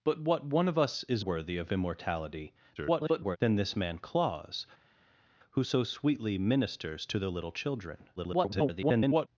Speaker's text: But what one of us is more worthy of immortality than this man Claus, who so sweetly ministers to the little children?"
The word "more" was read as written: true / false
false